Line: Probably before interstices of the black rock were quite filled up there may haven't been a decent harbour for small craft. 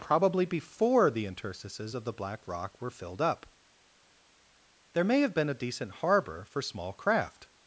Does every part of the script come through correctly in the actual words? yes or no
no